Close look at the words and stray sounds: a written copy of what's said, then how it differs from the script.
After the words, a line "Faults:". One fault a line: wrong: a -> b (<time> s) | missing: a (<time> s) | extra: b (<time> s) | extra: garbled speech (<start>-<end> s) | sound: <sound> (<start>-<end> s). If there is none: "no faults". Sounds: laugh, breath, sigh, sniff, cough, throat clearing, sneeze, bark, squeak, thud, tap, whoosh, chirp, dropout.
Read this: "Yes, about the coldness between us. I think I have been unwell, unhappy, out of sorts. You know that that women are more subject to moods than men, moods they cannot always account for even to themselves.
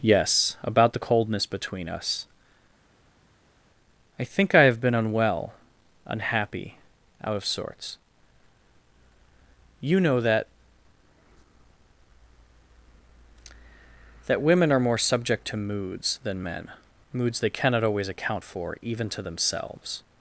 "Yes, about the coldness between us. I think I have been unwell, unhappy, out of sorts. You know that that women are more subject to moods than men, moods they cannot always account for even to themselves.
Faults:
no faults